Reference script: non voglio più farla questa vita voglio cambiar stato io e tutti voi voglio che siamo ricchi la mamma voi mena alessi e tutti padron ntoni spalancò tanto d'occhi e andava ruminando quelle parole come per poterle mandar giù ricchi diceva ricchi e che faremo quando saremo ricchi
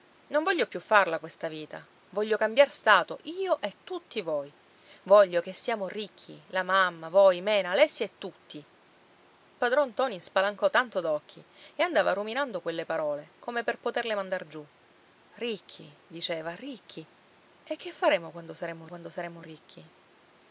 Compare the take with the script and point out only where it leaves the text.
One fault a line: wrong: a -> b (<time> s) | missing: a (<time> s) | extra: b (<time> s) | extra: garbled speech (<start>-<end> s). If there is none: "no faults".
extra: quando saremo (18.9 s)